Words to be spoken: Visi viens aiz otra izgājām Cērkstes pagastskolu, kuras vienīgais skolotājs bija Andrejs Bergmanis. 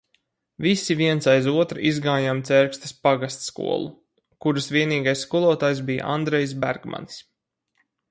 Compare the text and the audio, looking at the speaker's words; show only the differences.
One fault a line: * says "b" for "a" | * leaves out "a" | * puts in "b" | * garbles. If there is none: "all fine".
all fine